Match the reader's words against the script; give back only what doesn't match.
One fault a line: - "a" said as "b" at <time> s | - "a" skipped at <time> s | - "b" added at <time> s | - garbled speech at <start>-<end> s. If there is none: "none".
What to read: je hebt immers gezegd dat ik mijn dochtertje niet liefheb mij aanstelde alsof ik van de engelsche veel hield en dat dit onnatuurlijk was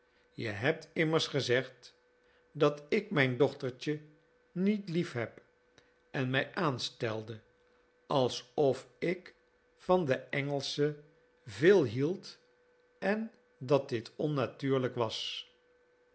- "en" added at 6.1 s